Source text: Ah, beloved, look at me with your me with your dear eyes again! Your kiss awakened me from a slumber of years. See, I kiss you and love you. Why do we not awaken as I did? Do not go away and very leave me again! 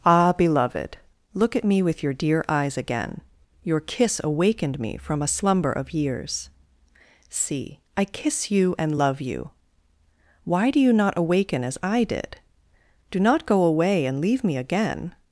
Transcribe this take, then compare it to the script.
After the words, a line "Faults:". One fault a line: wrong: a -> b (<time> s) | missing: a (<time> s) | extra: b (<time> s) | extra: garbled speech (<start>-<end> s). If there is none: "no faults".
Ah, beloved, look at me with your dear eyes again! Your kiss awakened me from a slumber of years. See, I kiss you and love you. Why do you not awaken as I did? Do not go away and leave me again!
Faults:
missing: me with your (2.1 s)
wrong: we -> you (10.8 s)
missing: very (14.2 s)